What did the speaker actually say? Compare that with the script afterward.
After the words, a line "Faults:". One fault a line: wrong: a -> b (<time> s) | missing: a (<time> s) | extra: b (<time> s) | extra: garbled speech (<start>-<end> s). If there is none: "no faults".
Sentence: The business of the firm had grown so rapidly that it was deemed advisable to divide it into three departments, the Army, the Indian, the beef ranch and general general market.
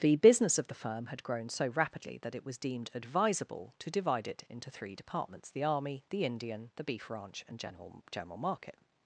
The business of the firm had grown so rapidly that it was deemed advisable to divide it into three departments, the Army, the Indian, the beef ranch and general general market.
Faults:
no faults